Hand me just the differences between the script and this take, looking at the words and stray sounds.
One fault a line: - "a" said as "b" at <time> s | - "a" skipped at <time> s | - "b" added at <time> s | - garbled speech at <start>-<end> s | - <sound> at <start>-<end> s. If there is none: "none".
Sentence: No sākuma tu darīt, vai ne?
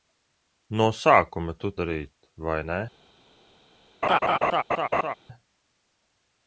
- laugh at 4.0-5.1 s